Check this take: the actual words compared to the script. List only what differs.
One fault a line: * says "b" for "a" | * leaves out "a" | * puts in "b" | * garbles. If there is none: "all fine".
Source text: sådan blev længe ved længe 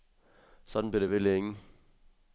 * says "det" for "længe"